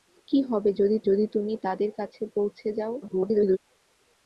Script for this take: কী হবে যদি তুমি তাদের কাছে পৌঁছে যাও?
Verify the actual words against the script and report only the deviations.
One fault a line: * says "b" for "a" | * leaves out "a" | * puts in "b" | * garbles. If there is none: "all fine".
* puts in "যদি"
* garbles